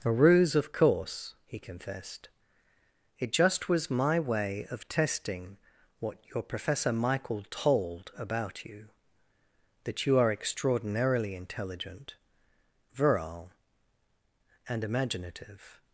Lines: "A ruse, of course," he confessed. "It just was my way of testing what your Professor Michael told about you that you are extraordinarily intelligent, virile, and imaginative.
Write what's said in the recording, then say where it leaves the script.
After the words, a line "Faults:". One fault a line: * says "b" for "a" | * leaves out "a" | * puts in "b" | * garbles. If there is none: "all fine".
"A ruse, of course," he confessed. "It just was my way of testing what your Professor Michael told about you that you are extraordinarily intelligent, virile, and imaginative.
Faults:
all fine